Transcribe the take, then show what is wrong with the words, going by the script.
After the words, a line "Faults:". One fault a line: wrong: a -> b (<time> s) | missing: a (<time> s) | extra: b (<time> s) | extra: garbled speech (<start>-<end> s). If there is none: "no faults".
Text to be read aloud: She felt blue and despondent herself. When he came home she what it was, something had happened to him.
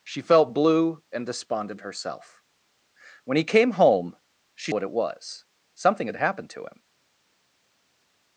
She felt blue and despondent herself. When he came home she what it was, something had happened to him.
Faults:
no faults